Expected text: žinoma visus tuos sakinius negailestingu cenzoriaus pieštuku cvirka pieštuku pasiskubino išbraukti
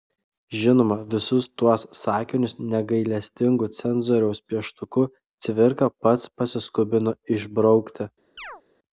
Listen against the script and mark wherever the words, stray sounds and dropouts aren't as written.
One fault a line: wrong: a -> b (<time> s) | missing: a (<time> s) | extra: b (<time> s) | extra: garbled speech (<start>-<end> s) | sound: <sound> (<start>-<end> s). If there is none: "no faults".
wrong: pieštuku -> pats (6.1 s)
sound: chirp (8.4-8.6 s)